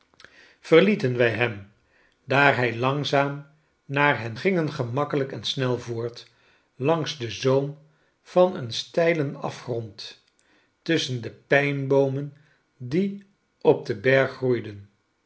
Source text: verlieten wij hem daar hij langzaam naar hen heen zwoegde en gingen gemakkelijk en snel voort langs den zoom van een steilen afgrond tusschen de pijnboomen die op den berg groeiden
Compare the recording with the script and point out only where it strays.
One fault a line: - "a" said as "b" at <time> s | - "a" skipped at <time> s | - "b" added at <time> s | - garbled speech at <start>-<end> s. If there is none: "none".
- "heen zwoegde en" skipped at 4.4 s